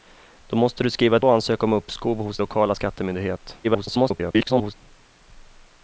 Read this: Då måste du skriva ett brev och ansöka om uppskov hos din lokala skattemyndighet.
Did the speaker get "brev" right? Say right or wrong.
wrong